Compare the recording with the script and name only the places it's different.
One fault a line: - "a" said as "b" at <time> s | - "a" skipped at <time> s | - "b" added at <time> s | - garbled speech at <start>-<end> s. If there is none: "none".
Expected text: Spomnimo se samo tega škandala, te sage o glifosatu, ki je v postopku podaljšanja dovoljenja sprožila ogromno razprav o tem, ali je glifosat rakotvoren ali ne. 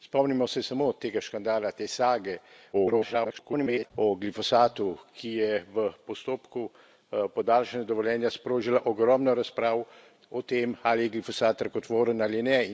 - garbled speech at 2.7-3.9 s